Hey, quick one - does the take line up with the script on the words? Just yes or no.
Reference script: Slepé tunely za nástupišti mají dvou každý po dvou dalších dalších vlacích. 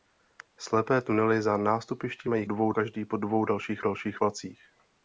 yes